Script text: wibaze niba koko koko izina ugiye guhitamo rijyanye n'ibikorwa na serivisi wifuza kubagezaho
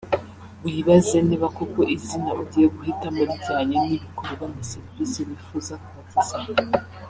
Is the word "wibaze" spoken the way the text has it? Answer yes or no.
yes